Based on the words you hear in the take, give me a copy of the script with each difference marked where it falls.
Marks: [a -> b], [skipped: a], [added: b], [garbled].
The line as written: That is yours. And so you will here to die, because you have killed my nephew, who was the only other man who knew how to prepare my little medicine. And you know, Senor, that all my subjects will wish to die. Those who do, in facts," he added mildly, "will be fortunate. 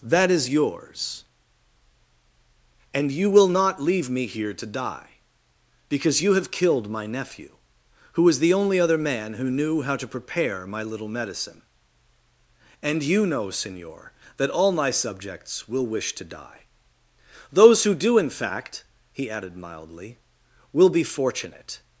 That is yours. And [skipped: so] you will [added: not leave me] here to die, because you have killed my nephew, who was the only other man who knew how to prepare my little medicine. And you know, Senor, that all my subjects will wish to die. Those who do, in [facts," -> fact] he added mildly, "will be fortunate.